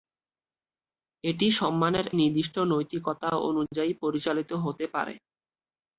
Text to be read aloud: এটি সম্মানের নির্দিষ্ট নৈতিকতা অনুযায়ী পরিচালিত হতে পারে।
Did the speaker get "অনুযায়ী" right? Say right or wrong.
right